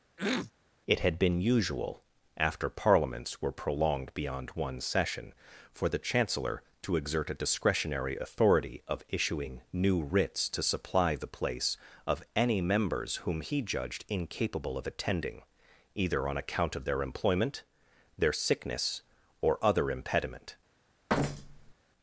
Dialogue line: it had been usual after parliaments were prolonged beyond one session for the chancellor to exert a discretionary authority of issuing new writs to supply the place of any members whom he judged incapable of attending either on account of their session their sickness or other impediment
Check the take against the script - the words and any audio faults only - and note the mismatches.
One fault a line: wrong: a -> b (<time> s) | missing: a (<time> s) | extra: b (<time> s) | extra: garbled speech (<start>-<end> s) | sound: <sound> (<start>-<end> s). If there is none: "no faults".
sound: throat clearing (0.2-0.5 s)
wrong: session -> employment (17.0 s)
sound: thud (21.1-21.7 s)